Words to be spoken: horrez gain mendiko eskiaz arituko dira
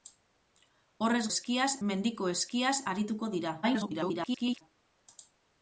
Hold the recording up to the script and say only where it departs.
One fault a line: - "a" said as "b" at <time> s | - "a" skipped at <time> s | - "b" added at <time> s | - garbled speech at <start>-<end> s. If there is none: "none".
- "gain" said as "eskiaz" at 1.3 s
- garbled speech at 3.6-4.6 s